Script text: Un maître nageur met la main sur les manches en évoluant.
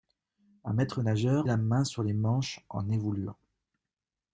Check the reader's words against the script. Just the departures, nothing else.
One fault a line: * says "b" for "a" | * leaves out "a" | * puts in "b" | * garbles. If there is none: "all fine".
* leaves out "met"